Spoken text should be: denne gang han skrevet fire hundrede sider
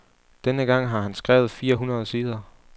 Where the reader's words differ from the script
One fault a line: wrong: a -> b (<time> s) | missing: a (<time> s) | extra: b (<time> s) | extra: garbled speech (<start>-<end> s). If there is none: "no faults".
extra: har (0.9 s)